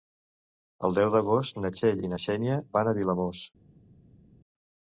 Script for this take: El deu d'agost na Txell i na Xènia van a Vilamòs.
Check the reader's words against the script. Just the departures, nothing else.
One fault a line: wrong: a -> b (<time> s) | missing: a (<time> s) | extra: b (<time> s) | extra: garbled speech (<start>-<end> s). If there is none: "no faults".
no faults